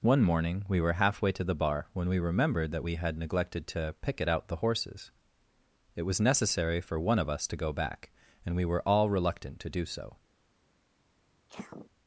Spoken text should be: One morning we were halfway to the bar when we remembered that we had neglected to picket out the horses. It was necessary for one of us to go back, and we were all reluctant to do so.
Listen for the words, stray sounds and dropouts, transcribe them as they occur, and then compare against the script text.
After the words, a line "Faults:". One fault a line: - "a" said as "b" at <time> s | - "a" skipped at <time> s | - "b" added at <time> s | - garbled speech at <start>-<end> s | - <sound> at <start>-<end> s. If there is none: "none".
One morning we were halfway to the bar when we remembered that we had neglected to picket out the horses. It was necessary for one of us to go back, and we were all reluctant to do so.
Faults:
- sneeze at 11.5-11.9 s